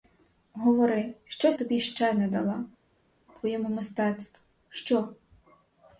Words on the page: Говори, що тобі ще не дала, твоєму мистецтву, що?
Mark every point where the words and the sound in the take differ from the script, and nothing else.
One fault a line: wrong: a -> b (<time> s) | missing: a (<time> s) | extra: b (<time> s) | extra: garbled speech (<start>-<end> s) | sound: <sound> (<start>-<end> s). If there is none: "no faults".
no faults